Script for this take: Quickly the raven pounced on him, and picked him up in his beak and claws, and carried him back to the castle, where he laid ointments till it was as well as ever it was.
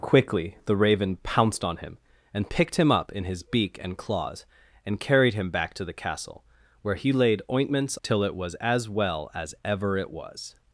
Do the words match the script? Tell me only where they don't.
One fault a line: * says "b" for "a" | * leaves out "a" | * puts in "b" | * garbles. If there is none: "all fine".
all fine